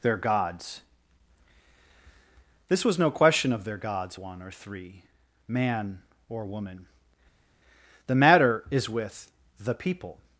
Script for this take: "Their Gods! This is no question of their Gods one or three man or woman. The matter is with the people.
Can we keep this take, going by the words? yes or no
no